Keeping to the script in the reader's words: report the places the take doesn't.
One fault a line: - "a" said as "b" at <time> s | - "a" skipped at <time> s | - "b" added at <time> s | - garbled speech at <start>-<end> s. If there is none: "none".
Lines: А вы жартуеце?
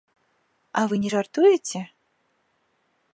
- "не" added at 1.0 s